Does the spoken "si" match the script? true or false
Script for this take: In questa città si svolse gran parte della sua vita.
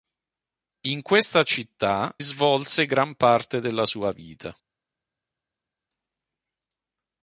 false